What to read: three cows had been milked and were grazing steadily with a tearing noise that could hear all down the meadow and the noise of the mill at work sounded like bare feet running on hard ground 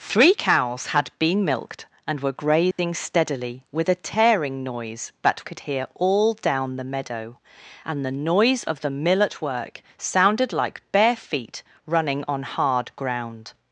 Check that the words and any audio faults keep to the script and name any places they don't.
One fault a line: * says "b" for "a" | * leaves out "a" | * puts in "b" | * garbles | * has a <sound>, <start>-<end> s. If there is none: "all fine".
* has a dropout, 2.7-2.8 s